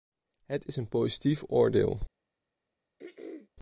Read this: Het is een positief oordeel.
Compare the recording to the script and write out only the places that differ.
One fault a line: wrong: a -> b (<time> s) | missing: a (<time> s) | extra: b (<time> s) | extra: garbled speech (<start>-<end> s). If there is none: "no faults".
no faults